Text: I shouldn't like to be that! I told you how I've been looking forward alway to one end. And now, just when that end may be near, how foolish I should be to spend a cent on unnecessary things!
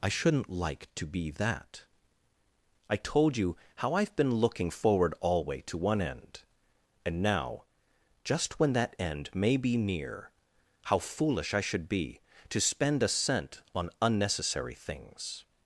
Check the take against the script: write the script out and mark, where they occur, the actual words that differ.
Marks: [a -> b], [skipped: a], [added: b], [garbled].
I shouldn't like to be that! I told you how I've been looking forward alway to one end. And now, just when that end may be near, how foolish I should be to spend a cent on unnecessary things!